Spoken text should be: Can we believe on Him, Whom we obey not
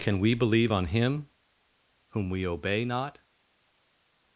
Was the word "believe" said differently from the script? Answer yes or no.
no